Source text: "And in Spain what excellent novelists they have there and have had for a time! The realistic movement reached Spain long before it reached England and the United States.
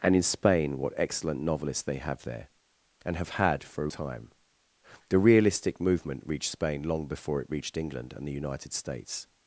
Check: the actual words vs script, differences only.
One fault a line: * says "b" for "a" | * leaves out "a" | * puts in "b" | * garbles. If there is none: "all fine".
all fine